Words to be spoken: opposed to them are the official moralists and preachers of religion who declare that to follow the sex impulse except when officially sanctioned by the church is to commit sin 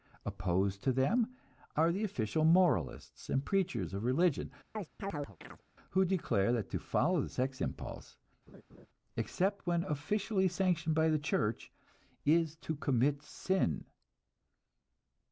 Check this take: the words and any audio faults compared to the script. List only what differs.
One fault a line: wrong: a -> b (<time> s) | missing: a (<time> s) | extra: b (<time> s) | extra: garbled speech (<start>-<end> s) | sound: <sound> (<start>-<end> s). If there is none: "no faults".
sound: chirp (4.7-5.6 s)
sound: laugh (8.5-8.9 s)